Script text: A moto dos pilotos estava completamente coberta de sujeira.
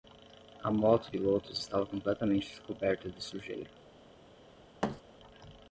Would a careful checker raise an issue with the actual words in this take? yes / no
yes